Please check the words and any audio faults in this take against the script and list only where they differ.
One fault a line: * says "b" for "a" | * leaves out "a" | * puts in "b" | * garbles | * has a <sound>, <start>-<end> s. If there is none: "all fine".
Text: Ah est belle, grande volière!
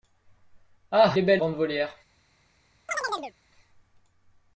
* has a chirp, 2.9-3.3 s